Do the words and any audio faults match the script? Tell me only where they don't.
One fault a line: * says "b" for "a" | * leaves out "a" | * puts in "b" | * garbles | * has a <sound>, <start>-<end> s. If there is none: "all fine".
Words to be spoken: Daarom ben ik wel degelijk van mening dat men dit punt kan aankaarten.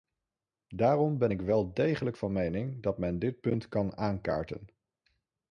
all fine